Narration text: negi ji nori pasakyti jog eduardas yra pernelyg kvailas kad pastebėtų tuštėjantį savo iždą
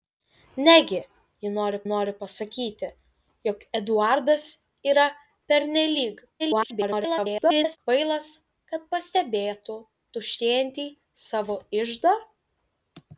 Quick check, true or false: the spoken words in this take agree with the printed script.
false